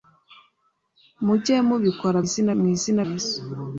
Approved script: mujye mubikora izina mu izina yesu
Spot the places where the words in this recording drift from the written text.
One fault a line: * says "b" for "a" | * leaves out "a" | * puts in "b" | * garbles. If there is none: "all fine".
all fine